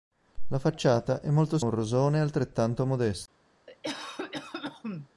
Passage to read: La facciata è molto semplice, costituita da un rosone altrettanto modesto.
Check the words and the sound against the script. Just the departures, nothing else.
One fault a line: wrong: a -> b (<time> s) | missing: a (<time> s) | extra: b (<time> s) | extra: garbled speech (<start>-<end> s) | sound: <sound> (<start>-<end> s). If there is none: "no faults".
missing: semplice costituita da (1.6 s)
sound: cough (3.7-5.1 s)